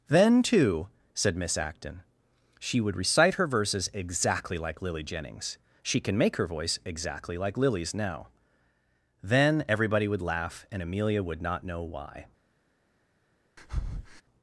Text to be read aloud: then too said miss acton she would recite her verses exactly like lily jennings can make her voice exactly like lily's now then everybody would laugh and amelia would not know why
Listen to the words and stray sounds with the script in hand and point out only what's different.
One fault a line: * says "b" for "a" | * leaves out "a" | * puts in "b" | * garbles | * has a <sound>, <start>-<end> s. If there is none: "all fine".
* puts in "she"
* has a breath, 13.6-14.2 s